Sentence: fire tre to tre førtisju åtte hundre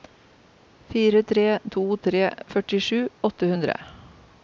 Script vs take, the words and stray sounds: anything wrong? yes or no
no